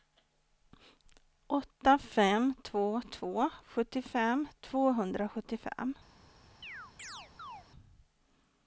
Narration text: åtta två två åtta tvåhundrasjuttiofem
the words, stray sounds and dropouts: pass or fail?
fail